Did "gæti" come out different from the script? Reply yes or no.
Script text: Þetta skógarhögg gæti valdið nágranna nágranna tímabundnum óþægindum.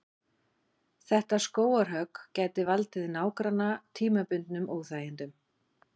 no